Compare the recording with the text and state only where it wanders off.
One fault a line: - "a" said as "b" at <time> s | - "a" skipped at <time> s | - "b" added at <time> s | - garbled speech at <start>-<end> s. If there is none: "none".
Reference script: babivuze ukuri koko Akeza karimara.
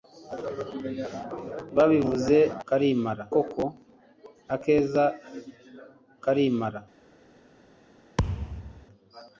- "ukuri" said as "karimara" at 2.7 s